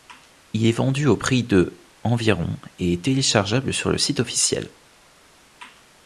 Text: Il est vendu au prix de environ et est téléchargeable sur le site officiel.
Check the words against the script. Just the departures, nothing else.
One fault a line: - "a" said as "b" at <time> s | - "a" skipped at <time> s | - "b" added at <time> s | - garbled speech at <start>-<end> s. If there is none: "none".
none